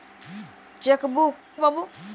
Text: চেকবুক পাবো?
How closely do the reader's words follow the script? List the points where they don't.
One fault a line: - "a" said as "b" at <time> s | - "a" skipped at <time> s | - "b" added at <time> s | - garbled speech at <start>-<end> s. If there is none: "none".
none